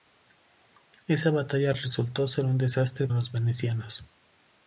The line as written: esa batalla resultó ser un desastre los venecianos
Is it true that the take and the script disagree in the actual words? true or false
false